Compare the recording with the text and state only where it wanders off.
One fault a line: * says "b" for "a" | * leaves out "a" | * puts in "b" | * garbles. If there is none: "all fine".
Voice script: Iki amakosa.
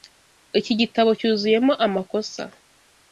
* puts in "gitabo cyuzuyemo"